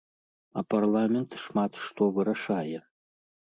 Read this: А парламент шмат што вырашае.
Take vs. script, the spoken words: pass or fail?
pass